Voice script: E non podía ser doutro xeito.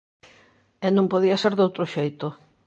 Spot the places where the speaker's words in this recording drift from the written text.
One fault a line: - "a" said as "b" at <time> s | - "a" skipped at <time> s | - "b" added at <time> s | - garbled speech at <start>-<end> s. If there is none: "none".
none